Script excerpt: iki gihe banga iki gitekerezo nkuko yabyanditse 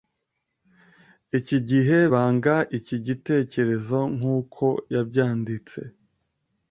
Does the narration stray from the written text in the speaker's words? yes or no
no